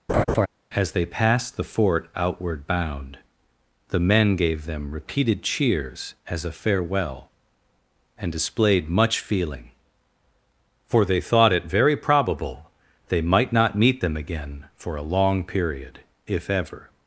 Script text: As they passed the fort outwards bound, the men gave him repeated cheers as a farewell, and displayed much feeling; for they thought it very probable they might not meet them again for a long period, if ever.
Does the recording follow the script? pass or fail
fail